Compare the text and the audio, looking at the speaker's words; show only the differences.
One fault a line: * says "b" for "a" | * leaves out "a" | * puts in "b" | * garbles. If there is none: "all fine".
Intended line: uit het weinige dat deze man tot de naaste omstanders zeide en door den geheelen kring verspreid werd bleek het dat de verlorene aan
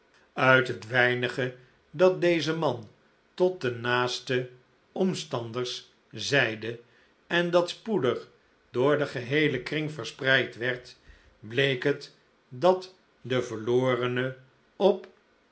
* puts in "dat spoedig"
* says "op" for "aan"